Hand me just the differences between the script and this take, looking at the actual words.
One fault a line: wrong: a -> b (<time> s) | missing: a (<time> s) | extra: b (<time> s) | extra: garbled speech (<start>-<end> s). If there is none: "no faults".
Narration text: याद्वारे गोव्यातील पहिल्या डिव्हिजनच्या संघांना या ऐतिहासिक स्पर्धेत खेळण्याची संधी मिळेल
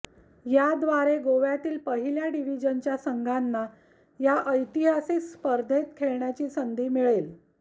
no faults